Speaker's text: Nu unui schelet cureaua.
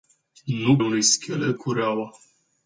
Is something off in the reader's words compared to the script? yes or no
no